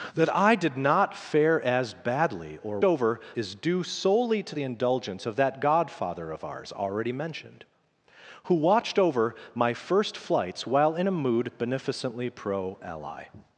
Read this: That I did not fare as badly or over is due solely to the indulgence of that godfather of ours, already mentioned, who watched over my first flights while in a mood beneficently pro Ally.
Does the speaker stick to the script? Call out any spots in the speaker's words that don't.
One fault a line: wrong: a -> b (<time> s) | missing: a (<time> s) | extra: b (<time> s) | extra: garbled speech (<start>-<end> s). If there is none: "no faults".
no faults